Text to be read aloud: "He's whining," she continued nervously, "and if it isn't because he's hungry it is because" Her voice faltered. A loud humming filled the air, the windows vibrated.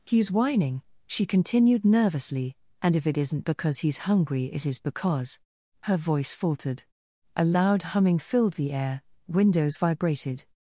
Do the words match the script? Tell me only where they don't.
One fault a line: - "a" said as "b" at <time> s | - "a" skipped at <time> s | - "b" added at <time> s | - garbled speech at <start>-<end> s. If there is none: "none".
- "the" skipped at 9.0 s